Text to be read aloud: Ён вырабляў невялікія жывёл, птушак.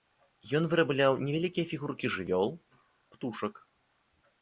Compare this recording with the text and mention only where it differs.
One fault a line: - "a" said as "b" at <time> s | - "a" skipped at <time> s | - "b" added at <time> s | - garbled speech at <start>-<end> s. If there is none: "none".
- "фігуркі" added at 1.7 s